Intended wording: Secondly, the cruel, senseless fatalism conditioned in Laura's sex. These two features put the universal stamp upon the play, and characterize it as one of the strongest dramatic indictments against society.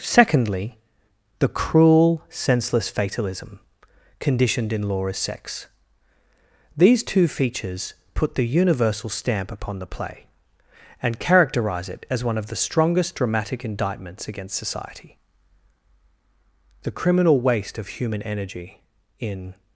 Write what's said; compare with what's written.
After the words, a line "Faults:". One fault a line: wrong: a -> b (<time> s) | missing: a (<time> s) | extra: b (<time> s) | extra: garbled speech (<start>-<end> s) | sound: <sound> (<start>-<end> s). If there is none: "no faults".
Secondly, the cruel, senseless fatalism conditioned in Laura's sex. These two features put the universal stamp upon the play, and characterize it as one of the strongest dramatic indictments against society. The criminal waste of human energy, in
Faults:
extra: The criminal waste of human energy in (16.8 s)